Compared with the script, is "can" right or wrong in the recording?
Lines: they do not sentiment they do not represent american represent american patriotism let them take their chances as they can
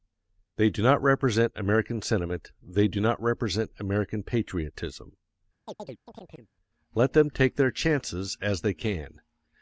right